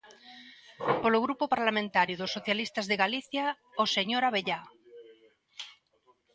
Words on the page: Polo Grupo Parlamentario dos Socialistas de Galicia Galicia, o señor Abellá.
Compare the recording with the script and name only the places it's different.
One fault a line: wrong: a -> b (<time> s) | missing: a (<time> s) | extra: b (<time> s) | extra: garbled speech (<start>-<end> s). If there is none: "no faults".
missing: Galicia (3.4 s)